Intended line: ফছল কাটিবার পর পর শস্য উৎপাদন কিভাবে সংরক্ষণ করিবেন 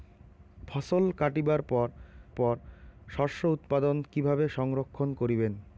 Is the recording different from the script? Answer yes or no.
no